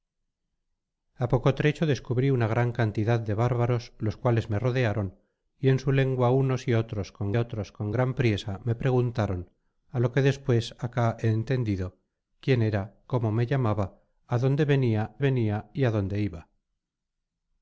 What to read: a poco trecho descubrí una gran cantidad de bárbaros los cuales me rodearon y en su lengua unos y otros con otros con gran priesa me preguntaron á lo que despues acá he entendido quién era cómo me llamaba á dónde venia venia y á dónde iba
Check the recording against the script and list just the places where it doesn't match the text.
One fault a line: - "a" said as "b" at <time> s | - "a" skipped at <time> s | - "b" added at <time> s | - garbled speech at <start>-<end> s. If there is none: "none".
none